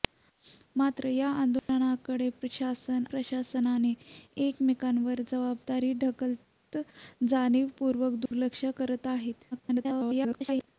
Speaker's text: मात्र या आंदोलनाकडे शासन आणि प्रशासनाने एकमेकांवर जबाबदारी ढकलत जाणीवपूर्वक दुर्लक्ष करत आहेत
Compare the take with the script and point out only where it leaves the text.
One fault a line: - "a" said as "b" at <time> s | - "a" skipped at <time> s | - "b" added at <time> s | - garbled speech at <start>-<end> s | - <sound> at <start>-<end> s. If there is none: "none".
- dropout at 1.6-1.7 s
- "आणि" skipped at 3.0 s
- dropout at 8.3-8.3 s
- garbled speech at 9.5-10.7 s